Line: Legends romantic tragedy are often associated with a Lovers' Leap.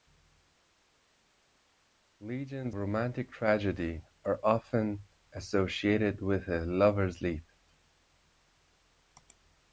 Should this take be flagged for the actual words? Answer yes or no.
no